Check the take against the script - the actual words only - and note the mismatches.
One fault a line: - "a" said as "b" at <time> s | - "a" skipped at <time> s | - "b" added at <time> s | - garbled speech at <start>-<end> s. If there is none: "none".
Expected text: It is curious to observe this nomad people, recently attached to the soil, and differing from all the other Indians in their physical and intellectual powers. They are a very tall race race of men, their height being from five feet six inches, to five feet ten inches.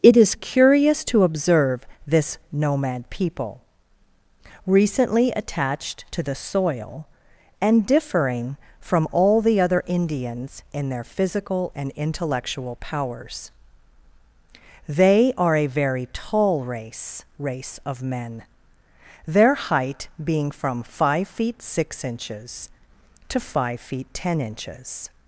none